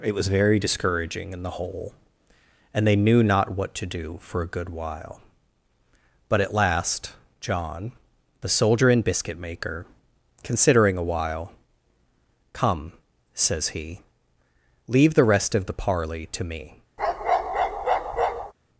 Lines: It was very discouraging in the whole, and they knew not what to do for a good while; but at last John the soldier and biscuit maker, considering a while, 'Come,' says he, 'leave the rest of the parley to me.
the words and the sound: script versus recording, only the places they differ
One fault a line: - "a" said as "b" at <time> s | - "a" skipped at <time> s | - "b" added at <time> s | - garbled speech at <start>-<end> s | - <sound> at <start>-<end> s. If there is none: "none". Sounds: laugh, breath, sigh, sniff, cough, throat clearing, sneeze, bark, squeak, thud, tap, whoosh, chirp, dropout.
- bark at 17.0-18.5 s